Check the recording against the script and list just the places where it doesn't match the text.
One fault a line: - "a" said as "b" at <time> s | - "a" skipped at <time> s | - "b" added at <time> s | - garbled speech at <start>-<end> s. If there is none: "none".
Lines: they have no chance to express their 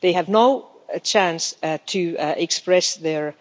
none